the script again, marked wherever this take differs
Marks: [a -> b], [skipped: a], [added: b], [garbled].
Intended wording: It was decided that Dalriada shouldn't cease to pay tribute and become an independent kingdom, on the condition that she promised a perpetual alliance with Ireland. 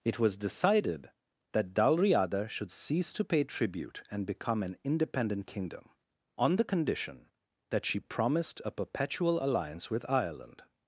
It was decided that Dalriada [shouldn't -> should] cease to pay tribute and become an independent kingdom, on the condition that she promised a perpetual alliance with Ireland.